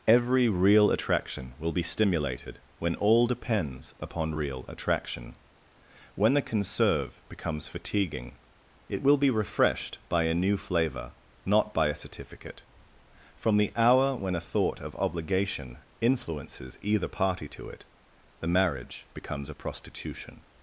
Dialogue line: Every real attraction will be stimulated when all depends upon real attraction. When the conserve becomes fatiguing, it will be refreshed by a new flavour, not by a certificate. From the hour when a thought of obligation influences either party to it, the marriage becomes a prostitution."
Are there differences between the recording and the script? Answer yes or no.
no